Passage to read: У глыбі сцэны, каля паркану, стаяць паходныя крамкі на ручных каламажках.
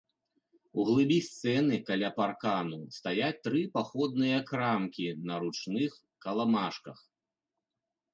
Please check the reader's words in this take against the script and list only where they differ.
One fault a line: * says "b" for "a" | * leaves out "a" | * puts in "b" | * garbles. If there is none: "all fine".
* puts in "тры"